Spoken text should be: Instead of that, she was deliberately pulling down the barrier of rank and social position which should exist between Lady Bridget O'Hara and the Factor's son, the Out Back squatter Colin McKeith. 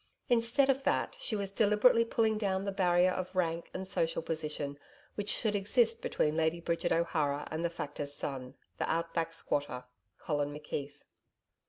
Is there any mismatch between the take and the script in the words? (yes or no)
no